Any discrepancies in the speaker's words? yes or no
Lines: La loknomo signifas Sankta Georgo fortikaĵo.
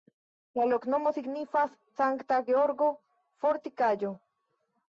no